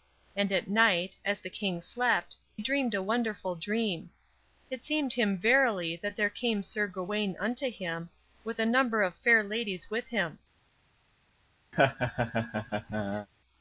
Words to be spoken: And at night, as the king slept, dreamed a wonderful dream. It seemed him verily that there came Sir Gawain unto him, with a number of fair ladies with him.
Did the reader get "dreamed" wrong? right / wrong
right